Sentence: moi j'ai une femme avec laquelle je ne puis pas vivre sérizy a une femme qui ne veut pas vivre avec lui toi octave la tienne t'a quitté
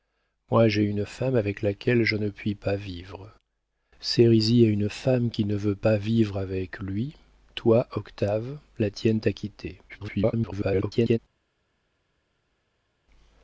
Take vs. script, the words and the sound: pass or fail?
fail